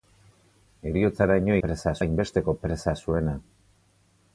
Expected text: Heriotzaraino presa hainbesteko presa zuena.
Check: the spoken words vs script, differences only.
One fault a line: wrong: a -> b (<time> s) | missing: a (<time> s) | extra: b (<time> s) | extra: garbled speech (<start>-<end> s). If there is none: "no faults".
no faults